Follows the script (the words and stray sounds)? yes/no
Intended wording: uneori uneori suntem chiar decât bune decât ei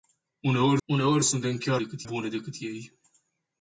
yes